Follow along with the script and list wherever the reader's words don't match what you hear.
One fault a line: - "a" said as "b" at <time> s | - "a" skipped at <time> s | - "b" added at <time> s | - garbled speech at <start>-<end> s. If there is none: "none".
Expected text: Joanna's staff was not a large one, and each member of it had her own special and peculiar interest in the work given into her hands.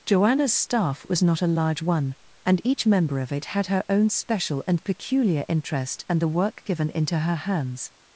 - "in" said as "and" at 6.1 s